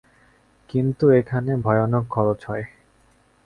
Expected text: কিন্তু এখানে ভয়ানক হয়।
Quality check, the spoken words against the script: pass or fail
fail